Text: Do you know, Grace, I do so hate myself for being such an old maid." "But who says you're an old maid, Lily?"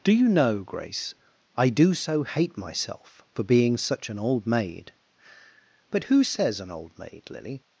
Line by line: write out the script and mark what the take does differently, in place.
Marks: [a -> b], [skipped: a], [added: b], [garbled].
Do you know, Grace, I do so hate myself for being such an old maid." "But who says [skipped: you're] an old maid, Lily?"